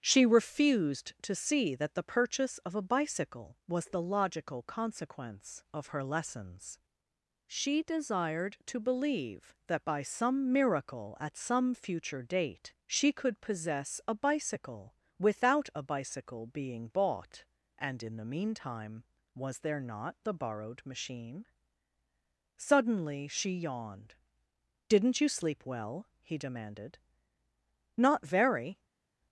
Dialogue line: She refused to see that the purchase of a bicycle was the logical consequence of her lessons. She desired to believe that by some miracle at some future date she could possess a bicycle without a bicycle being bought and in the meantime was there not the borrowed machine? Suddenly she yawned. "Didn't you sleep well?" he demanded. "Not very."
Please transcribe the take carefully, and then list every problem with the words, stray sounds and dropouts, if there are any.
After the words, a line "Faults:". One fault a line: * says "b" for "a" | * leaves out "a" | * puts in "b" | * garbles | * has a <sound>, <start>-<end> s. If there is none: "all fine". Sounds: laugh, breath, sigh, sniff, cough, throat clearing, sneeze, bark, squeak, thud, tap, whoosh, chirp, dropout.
She refused to see that the purchase of a bicycle was the logical consequence of her lessons. She desired to believe that by some miracle at some future date she could possess a bicycle without a bicycle being bought and in the meantime was there not the borrowed machine? Suddenly she yawned. "Didn't you sleep well?" he demanded. "Not very."
Faults:
all fine